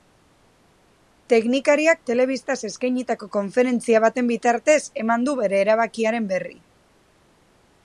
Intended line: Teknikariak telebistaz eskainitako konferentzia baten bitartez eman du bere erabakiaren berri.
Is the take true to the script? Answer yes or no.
yes